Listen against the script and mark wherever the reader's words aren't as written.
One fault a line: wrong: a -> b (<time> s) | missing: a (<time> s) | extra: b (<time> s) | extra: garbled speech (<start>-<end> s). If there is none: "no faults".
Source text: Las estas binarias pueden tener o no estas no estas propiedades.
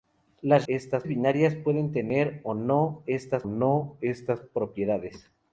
no faults